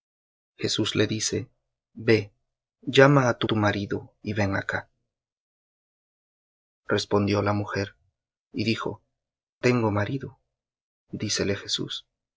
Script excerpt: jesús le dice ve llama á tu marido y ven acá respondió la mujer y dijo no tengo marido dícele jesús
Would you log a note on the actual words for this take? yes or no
yes